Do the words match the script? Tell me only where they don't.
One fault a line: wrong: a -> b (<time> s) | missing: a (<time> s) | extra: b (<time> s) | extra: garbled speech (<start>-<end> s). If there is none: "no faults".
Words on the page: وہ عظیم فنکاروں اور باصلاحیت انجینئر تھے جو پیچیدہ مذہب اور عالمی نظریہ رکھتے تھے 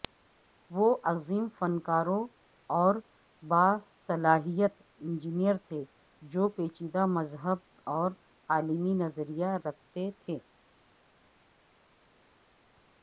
no faults